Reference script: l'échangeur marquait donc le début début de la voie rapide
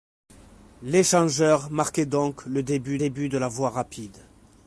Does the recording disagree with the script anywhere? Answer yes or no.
no